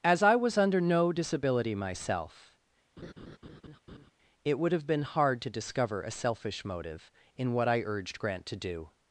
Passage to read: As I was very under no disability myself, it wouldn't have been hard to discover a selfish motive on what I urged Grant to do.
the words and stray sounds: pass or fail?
fail